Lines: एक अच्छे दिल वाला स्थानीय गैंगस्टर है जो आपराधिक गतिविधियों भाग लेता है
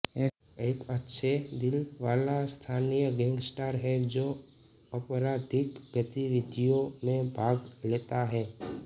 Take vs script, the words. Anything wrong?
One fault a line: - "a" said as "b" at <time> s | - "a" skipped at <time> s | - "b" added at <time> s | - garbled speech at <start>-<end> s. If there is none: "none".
- "में" added at 7.0 s